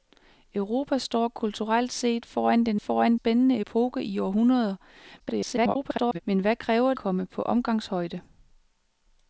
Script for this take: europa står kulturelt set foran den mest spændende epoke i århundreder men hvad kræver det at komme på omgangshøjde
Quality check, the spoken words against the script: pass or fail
fail